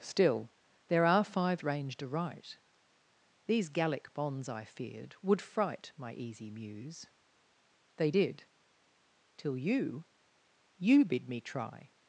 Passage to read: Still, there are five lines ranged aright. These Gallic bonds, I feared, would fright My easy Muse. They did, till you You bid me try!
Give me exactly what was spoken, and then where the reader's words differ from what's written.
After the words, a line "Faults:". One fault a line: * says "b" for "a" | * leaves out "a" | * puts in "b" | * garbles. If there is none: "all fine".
Still, there are five ranged aright. These Gallic bonds, I feared, would fright My easy Muse. They did, till you You bid me try!
Faults:
* leaves out "lines"